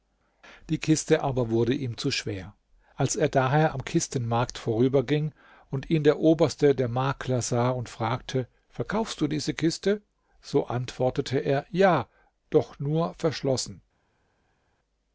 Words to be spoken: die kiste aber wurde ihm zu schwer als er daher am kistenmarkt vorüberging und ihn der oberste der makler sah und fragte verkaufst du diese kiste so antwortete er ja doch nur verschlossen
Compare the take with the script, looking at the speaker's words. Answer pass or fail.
pass